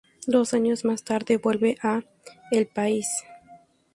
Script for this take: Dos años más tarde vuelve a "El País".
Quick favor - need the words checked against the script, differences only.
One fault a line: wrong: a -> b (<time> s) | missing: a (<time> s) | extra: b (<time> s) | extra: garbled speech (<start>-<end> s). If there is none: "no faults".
no faults